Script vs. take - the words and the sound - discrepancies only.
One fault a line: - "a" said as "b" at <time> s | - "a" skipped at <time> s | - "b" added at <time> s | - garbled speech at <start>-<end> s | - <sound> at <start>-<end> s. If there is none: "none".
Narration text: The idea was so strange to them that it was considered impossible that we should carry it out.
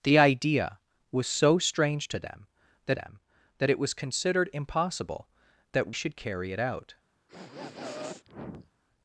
- "them that" added at 2.9 s
- "we" skipped at 5.9 s
- sniff at 7.3-8.7 s